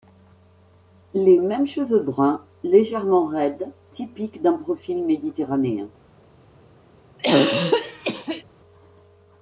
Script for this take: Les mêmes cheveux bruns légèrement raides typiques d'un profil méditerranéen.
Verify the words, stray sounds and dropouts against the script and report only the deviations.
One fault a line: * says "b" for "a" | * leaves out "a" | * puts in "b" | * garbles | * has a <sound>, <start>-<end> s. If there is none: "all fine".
* has a throat clearing, 7.2-8.4 s